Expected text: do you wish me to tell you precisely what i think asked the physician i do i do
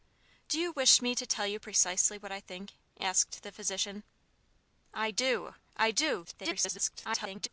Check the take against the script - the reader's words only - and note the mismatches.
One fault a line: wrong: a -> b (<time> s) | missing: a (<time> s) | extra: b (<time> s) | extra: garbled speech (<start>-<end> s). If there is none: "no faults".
extra: garbled speech (6.2-7.5 s)